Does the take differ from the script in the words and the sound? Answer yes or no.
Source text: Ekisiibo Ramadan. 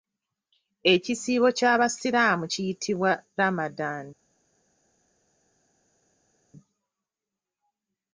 yes